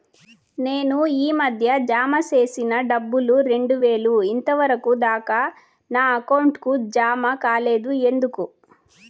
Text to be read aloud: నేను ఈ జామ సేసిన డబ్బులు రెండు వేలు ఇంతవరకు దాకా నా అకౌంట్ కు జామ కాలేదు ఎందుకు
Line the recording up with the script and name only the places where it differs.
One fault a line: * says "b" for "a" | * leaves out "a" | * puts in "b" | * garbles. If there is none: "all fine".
* puts in "మధ్య"